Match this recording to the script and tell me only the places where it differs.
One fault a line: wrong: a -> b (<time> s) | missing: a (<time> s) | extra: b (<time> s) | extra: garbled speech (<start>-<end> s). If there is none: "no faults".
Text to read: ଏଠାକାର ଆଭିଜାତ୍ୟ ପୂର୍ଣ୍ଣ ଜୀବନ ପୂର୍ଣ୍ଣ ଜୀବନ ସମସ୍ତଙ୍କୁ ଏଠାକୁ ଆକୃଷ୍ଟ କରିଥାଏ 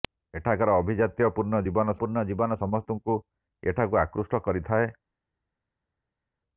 no faults